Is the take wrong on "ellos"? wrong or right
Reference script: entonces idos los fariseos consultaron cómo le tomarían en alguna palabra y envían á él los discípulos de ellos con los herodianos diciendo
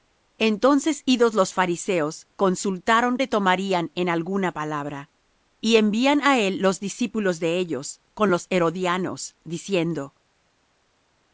right